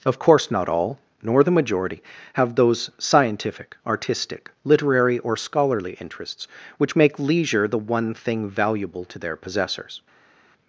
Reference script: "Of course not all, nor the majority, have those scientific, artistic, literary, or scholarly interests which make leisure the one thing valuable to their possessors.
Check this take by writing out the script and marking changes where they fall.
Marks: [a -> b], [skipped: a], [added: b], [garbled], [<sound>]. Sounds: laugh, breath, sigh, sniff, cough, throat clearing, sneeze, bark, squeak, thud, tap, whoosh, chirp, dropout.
"Of course not all, nor the majority, have those scientific, artistic, literary, or scholarly interests which make leisure the one thing valuable to their possessors.